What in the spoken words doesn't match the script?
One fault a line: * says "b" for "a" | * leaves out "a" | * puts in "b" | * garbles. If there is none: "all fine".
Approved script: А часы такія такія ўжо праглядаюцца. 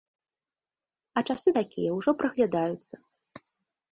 * leaves out "такія"